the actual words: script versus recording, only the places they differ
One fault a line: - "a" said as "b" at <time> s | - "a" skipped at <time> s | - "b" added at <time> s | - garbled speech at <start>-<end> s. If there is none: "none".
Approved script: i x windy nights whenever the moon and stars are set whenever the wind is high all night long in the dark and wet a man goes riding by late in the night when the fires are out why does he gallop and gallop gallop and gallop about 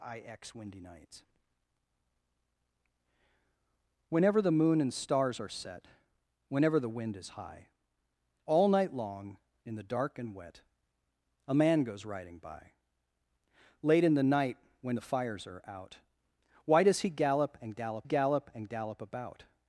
none